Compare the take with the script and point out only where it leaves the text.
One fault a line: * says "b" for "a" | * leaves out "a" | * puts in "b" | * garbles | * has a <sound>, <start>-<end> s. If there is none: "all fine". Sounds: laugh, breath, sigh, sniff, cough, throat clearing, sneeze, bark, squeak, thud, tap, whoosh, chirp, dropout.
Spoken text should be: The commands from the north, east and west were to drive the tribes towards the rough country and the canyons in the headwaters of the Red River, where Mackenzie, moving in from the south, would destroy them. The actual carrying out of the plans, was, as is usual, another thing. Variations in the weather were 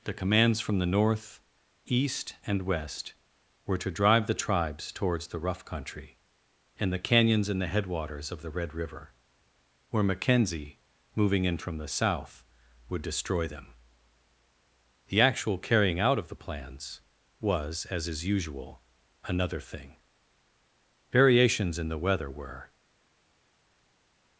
all fine